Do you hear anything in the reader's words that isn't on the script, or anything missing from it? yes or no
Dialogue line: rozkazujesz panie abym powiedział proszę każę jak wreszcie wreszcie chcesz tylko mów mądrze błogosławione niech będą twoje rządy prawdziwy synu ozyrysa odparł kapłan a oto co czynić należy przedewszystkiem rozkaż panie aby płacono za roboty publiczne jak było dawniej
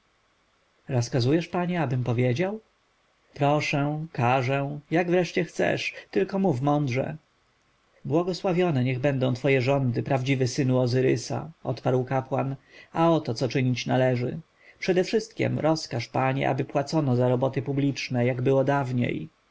yes